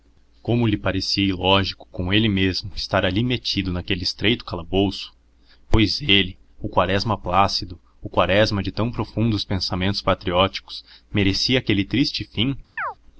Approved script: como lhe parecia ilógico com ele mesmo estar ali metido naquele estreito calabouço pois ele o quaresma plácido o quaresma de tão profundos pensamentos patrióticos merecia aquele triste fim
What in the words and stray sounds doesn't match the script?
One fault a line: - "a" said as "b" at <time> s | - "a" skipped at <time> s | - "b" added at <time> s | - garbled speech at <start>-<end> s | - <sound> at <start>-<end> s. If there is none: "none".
- chirp at 12.8-12.9 s